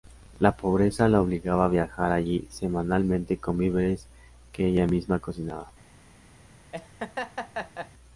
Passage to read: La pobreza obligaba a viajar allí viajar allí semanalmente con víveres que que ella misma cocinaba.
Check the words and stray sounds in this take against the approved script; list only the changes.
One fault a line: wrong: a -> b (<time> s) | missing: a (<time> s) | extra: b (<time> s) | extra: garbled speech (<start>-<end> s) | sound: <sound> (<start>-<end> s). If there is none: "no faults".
extra: la (1.1 s)
missing: viajar allí (2.5 s)
missing: que (4.7 s)
sound: laugh (6.7-7.9 s)